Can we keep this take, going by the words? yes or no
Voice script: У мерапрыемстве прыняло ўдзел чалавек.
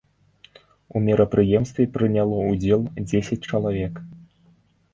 no